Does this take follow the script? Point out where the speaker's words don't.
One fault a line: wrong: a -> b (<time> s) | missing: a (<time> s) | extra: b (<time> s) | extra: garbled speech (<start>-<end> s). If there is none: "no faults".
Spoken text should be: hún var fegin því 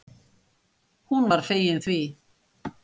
no faults